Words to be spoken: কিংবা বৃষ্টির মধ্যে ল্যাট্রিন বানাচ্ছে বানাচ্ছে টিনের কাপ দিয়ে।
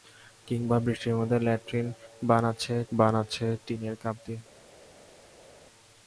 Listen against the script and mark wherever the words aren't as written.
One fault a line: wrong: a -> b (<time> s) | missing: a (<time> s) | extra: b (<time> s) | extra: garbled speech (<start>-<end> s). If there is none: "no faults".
no faults